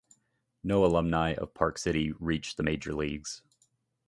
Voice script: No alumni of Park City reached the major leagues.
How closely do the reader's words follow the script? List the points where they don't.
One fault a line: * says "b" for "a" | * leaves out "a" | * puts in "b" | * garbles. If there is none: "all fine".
all fine